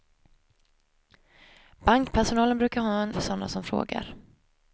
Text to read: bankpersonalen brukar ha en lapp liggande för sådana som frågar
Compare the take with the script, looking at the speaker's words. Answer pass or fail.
fail